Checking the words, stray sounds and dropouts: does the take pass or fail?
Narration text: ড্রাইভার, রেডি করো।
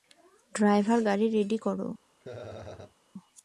fail